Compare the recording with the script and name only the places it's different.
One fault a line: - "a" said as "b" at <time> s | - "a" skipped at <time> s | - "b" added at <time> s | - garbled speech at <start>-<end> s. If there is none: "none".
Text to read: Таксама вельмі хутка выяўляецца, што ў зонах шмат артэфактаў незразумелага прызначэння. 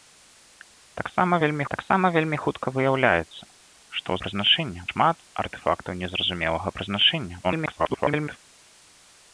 - "таксама вельмі" added at 1.7 s
- "зонах" said as "прызначэння" at 4.3 s
- garbled speech at 7.4-8.4 s